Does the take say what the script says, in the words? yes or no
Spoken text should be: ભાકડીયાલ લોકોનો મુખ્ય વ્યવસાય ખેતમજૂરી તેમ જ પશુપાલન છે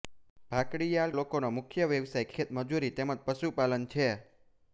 yes